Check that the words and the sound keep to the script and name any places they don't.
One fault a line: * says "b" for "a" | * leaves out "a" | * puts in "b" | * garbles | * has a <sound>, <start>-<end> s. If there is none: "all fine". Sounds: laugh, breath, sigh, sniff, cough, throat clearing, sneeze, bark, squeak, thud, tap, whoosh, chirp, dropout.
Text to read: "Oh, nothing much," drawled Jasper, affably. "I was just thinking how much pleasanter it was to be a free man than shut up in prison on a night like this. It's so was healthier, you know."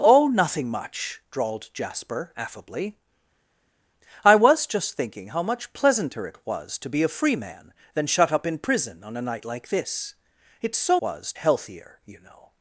all fine